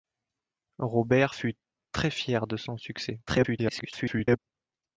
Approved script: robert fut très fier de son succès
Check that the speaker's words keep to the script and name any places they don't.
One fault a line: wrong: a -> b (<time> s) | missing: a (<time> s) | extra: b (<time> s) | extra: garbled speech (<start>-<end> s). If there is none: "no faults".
extra: garbled speech (3.3-4.4 s)